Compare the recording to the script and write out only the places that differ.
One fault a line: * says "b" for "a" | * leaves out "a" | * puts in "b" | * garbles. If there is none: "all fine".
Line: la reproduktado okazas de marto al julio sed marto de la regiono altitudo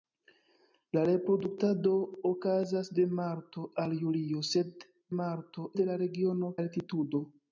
all fine